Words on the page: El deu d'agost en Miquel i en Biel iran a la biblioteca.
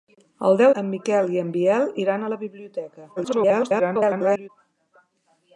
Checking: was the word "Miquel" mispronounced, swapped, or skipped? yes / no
no